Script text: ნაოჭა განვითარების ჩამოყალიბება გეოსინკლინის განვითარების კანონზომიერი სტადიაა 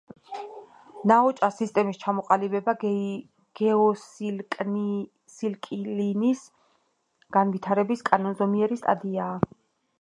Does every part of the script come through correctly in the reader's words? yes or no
no